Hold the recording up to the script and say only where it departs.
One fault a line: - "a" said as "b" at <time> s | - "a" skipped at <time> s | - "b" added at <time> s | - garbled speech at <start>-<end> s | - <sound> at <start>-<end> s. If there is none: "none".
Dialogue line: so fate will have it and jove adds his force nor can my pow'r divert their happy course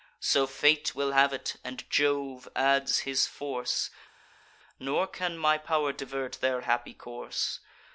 none